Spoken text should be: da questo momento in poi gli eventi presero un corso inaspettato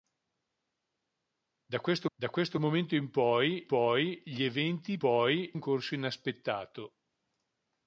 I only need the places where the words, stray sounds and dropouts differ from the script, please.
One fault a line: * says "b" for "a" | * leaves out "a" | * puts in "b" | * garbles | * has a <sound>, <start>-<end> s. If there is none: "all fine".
* puts in "da questo"
* puts in "poi"
* says "poi" for "presero"